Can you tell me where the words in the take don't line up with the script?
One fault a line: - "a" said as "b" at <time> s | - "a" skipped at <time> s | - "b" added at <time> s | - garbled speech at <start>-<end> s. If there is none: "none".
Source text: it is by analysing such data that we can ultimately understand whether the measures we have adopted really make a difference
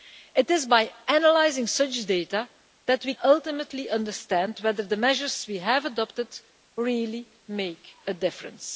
- "can" skipped at 3.1 s